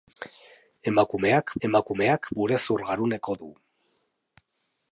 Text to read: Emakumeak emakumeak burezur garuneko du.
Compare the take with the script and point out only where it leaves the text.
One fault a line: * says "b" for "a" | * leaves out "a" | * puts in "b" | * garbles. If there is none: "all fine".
all fine